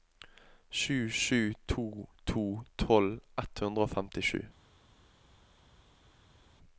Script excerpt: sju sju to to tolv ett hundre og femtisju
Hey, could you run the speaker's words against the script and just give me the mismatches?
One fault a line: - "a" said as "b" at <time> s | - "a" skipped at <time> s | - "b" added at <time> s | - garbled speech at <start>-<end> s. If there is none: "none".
none